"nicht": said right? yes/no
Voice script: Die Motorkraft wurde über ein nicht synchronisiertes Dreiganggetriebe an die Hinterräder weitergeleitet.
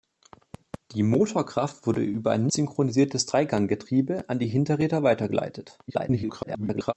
no